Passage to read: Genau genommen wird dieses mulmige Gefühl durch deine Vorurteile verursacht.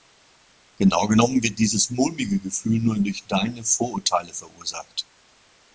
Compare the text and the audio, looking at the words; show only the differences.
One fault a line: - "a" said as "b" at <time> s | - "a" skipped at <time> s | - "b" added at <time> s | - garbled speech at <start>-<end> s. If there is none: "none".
- "nur" added at 2.8 s